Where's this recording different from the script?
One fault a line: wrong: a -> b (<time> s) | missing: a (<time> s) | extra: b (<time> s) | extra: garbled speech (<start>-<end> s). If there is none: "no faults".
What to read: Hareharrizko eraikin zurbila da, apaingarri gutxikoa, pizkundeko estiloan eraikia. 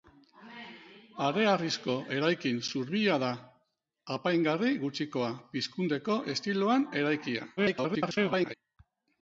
extra: garbled speech (7.6-8.5 s)